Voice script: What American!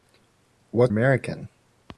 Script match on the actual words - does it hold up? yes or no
yes